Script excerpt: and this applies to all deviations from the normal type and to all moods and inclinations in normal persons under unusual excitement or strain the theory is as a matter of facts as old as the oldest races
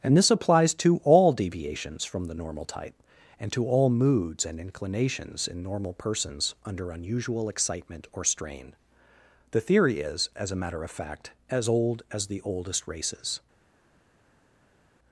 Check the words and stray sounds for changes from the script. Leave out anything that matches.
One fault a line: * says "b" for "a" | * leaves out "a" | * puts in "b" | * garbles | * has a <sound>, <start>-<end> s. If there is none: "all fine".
* says "fact" for "facts"